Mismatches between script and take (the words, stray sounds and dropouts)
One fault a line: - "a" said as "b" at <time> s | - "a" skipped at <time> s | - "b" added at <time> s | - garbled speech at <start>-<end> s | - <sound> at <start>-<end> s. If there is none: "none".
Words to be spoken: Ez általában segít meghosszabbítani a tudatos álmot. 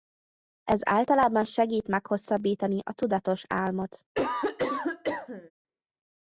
- cough at 4.1-5.5 s